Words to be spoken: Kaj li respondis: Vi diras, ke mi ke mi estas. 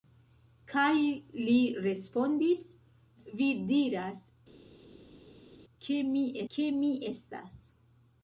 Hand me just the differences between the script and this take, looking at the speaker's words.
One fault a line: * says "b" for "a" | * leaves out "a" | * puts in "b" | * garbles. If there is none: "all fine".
all fine